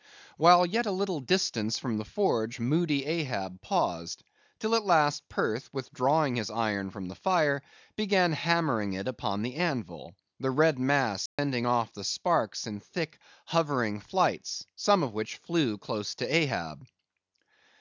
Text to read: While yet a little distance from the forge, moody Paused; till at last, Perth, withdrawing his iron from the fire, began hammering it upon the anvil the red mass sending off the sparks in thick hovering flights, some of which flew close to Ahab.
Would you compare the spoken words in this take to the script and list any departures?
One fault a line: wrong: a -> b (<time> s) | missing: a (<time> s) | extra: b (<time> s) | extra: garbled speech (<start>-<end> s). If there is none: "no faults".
extra: Ahab (3.0 s)